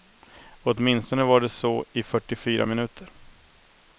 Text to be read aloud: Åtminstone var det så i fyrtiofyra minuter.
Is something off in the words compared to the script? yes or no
no